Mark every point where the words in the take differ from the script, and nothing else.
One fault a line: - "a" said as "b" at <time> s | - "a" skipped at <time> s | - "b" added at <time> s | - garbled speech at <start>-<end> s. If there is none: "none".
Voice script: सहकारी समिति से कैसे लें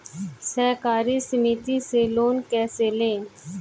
- "लोन" added at 2.1 s